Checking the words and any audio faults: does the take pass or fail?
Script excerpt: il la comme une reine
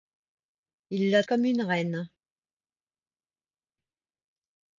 pass